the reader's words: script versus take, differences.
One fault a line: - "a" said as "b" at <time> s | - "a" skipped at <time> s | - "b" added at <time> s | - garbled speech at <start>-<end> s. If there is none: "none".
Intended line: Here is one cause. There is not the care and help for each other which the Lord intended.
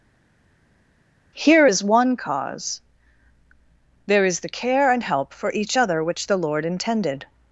- "not" skipped at 4.4 s